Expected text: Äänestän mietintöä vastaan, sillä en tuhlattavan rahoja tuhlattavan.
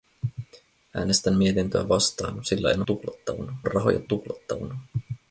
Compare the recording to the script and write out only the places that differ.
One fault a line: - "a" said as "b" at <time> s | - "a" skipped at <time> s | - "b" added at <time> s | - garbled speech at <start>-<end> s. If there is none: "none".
none